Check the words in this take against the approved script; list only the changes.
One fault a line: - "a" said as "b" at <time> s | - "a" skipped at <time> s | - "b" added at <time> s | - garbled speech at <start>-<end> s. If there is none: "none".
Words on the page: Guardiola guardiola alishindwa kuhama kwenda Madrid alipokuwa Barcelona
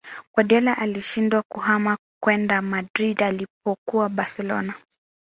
- "guardiola" skipped at 0.8 s